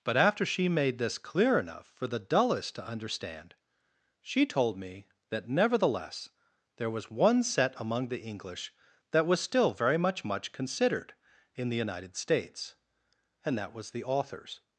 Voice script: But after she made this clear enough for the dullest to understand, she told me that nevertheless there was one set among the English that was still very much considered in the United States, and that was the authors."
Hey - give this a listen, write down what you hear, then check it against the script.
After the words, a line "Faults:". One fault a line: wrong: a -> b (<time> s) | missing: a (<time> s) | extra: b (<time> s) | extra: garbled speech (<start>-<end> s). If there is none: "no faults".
But after she made this clear enough for the dullest to understand, she told me that nevertheless there was one set among the English that was still very much much considered in the United States, and that was the authors."
Faults:
extra: much (10.2 s)